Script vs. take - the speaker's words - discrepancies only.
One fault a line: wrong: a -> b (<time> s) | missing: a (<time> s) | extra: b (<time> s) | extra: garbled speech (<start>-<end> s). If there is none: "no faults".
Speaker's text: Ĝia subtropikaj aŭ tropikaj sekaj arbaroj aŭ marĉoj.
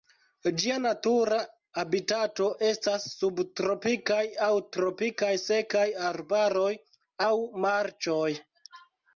extra: natura habitato estas (0.8 s)